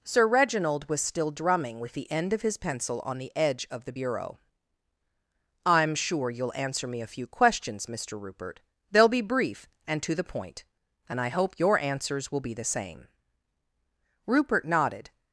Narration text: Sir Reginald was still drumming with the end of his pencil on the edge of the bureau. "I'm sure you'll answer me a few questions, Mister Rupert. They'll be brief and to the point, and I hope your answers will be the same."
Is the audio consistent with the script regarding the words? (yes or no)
no